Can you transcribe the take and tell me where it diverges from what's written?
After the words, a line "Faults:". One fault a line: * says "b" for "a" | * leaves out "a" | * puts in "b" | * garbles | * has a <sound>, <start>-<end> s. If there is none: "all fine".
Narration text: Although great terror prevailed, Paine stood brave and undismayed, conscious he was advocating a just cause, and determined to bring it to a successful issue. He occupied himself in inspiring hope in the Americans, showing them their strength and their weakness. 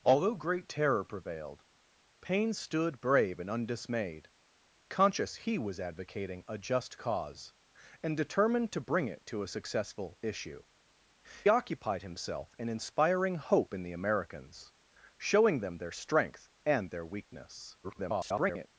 Although great terror prevailed, Paine stood brave and undismayed, conscious he was advocating a just cause, and determined to bring it to a successful issue. Occupied himself in inspiring hope in the Americans, showing them their strength and their weakness. [garbled]
Faults:
* leaves out "He"
* garbles